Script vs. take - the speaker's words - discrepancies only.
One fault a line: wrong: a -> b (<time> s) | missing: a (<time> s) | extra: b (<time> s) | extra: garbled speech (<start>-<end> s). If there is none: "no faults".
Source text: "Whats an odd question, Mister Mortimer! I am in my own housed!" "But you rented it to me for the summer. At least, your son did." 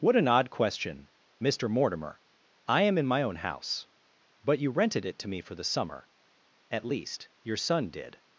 wrong: Whats -> What (0.0 s)
wrong: housed -> house (3.4 s)